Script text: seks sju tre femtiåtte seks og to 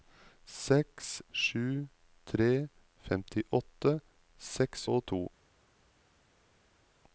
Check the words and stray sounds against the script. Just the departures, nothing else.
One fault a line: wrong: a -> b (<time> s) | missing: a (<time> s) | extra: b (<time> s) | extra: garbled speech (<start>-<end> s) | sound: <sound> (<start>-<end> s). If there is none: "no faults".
no faults